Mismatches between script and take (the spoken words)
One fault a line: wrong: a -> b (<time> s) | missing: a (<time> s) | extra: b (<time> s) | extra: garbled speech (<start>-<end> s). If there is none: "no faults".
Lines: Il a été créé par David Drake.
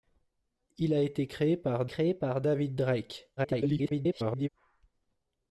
extra: créé par (1.9 s)
extra: garbled speech (3.4-4.5 s)